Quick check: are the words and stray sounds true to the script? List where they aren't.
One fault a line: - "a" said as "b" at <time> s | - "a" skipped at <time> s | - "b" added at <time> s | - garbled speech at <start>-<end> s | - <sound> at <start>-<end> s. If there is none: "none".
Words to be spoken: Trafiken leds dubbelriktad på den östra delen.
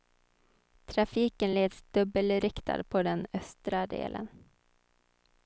none